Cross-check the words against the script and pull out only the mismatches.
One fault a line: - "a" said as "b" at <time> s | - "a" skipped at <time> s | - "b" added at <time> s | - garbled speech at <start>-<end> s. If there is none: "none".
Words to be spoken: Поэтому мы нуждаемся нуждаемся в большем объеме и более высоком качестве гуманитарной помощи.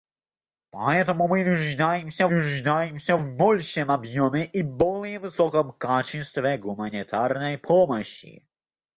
none